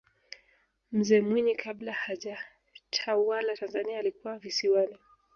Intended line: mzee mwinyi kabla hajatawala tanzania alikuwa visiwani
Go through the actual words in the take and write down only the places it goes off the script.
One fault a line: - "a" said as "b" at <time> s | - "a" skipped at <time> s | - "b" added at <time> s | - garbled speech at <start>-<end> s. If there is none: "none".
none